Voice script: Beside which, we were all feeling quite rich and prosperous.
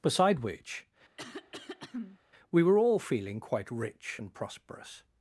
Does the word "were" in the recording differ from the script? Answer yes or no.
no